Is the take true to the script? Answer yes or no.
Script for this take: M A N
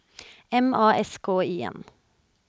no